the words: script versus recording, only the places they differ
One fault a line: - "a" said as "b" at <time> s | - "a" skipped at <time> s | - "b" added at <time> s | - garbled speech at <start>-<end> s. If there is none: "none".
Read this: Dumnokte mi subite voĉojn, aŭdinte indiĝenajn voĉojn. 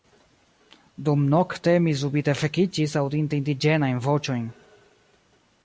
- "voĉojn" said as "vekiĝis" at 2.4 s